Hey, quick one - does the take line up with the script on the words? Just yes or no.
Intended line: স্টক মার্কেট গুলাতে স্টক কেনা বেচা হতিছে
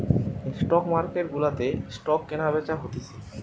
yes